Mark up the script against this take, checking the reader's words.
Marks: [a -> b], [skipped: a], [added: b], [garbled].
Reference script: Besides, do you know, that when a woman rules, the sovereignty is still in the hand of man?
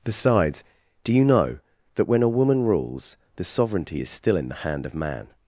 Besides, do you know, that when a woman rules, the sovereignty is still in the hand of man?